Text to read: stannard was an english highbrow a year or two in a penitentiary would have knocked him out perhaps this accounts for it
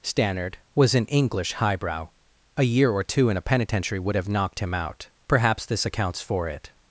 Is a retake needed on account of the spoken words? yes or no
no